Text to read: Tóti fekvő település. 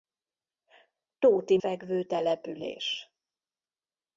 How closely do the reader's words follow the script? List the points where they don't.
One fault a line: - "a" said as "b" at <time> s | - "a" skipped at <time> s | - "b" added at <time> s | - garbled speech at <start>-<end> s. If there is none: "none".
none